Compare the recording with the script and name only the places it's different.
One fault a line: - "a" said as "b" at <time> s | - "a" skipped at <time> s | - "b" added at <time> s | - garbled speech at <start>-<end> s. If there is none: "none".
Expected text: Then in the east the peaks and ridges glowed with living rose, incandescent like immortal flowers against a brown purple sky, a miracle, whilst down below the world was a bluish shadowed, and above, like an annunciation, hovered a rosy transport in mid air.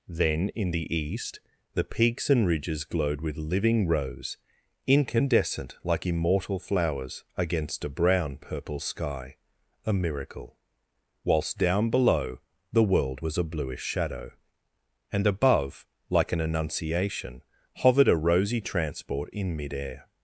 - "shadowed" said as "shadow" at 13.8 s